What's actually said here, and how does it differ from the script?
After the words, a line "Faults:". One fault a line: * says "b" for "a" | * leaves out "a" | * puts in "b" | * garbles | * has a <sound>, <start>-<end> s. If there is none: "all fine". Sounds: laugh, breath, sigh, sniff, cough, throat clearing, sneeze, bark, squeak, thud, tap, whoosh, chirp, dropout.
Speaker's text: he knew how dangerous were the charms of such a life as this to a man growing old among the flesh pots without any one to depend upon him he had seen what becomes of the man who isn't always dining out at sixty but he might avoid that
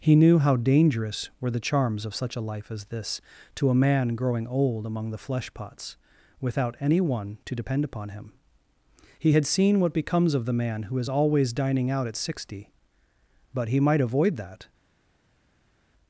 he knew how dangerous were the charms of such a life as this to a man growing old among the flesh pots without any one to depend upon him he had seen what becomes of the man who is always dining out at sixty but he might avoid that
Faults:
* says "is" for "isn't"